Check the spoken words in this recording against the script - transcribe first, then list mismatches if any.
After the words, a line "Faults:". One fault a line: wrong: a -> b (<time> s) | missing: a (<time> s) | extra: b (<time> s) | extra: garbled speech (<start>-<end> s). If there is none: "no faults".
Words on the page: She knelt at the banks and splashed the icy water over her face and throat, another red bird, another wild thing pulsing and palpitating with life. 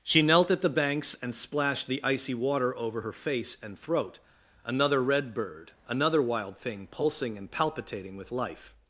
She knelt at the banks and splashed the icy water over her face and throat, another red bird, another wild thing pulsing and palpitating with life.
Faults:
no faults